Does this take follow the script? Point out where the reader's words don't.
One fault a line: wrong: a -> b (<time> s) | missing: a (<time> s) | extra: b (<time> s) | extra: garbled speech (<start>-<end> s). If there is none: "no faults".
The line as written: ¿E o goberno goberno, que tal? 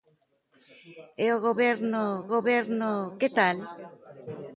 no faults